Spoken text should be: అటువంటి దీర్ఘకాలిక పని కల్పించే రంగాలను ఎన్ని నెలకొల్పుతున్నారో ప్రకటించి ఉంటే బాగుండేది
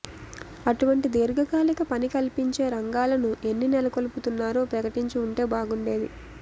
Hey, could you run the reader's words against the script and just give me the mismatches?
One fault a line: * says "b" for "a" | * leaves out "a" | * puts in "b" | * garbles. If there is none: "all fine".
all fine